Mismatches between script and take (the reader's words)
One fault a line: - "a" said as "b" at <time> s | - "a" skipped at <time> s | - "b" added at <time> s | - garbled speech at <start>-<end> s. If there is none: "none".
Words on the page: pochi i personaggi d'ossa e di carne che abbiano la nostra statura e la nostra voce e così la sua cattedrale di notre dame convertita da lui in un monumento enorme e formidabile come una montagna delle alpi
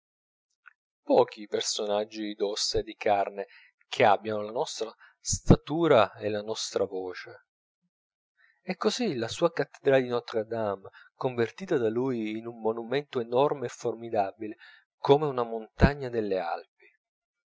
none